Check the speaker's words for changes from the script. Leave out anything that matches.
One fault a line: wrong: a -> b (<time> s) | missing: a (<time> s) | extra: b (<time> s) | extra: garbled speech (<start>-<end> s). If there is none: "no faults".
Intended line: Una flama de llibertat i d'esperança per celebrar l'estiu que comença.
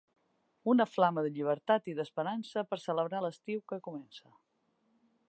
no faults